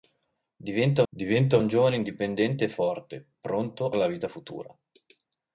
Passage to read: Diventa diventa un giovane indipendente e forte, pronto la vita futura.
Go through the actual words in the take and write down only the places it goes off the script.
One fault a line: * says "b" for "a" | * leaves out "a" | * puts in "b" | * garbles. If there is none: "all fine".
all fine